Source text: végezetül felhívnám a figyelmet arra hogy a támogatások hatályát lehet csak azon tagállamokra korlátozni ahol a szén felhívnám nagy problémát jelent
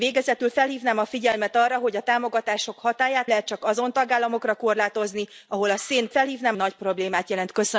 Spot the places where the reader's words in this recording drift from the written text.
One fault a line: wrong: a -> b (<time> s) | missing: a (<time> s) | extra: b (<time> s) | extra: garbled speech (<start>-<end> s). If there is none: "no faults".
no faults